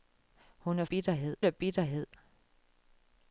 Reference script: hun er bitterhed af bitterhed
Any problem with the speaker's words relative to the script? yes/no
no